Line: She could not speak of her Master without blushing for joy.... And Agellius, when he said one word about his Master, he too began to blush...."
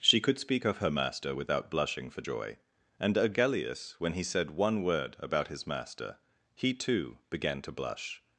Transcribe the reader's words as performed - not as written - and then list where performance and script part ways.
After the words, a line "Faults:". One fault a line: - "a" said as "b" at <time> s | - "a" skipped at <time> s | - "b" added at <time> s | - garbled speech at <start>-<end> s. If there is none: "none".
She could speak of her Master without blushing for joy.... And Agellius, when he said one word about his Master, he too began to blush...."
Faults:
- "not" skipped at 0.4 s